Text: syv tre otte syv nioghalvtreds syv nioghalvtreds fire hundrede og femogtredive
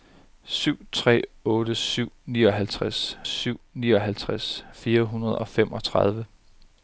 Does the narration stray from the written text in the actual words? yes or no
no